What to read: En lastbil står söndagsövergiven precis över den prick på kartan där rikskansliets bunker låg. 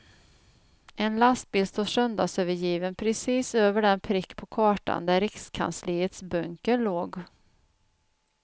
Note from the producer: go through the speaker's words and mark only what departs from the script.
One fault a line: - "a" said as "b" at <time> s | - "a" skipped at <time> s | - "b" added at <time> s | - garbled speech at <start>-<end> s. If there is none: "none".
none